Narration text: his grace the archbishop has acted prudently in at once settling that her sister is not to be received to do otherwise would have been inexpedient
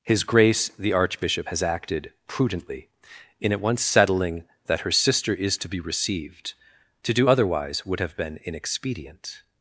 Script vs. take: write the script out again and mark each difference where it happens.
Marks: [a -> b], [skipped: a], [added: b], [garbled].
his grace the archbishop has acted prudently in at once settling that her sister is [skipped: not] to be received to do otherwise would have been inexpedient